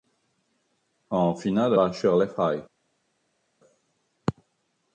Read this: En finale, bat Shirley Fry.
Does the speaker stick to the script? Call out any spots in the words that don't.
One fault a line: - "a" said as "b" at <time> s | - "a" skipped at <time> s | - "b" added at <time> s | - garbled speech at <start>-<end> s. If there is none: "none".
none